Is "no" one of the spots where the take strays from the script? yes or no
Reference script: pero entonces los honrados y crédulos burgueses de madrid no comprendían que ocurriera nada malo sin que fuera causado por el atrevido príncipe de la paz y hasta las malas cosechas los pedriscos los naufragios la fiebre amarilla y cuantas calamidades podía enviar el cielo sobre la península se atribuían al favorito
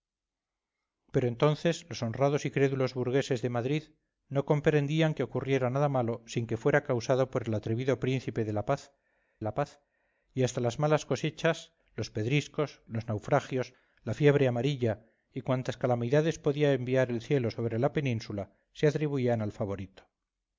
no